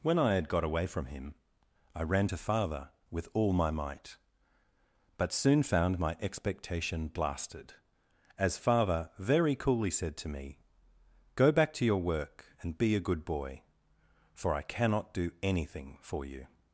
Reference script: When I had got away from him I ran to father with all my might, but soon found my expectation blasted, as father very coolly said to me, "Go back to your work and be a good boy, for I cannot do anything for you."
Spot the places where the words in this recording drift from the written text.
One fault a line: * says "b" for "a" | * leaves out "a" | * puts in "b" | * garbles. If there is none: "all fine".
all fine